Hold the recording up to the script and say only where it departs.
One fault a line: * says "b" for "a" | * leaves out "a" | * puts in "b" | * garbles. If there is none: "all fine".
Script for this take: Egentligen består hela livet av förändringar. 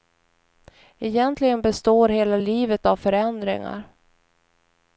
all fine